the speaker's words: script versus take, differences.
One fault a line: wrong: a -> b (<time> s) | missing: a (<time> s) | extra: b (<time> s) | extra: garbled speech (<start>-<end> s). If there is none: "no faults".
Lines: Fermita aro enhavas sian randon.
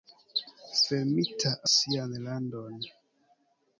missing: aro enhavas (1.5 s)